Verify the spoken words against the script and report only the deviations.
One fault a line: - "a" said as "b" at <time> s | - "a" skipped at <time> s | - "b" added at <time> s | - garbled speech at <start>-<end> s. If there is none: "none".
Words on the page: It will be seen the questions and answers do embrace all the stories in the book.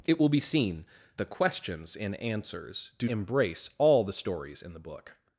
none